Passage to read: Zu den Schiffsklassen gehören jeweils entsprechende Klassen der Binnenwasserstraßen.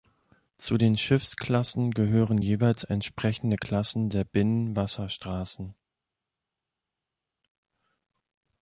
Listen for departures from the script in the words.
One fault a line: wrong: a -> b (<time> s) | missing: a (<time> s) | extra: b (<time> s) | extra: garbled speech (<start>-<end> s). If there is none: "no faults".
no faults